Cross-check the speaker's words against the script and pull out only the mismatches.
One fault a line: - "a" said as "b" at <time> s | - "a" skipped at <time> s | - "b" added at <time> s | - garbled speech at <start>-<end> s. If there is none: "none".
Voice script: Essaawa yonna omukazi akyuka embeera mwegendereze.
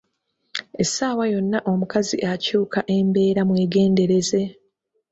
none